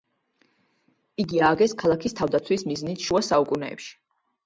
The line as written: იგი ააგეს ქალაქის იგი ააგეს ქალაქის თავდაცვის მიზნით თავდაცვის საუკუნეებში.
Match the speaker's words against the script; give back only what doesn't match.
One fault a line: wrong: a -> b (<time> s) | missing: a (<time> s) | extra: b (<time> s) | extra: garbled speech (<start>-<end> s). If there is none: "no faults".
missing: იგი ააგეს ქალაქის (2.2 s)
wrong: თავდაცვის -> შუა (3.0 s)